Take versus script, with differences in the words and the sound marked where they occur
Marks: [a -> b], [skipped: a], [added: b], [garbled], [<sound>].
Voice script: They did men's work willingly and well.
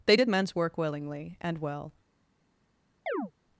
They did men's work willingly and well. [chirp]